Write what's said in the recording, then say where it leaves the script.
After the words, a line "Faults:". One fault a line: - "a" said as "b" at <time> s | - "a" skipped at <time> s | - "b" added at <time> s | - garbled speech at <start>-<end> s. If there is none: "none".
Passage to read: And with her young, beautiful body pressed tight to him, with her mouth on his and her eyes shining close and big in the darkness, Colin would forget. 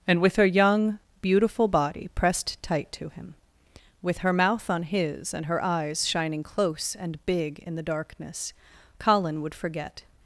And with her young, beautiful body pressed tight to him, with her mouth on his and her eyes shining close and big in the darkness, Colin would forget.
Faults:
none